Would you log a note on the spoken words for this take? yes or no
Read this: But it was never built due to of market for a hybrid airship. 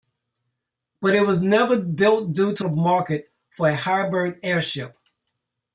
no